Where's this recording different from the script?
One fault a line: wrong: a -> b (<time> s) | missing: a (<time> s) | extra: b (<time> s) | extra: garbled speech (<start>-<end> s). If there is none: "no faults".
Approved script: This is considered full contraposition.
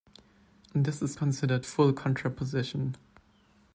no faults